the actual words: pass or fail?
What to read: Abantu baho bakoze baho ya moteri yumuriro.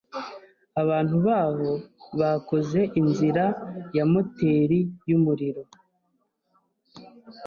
fail